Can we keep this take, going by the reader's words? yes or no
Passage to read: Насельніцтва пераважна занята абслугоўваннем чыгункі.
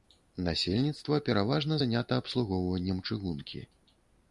yes